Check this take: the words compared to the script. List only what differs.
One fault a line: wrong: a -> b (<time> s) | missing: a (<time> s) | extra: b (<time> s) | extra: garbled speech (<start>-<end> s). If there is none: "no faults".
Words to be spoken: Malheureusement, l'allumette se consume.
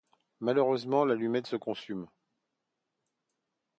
no faults